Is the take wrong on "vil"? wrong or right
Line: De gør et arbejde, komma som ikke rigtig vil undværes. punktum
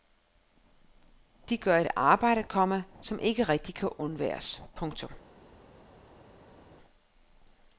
wrong